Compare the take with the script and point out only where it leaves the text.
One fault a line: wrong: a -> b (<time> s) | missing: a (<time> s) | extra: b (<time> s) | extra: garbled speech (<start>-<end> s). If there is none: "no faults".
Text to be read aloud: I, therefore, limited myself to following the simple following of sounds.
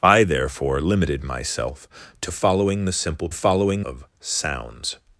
no faults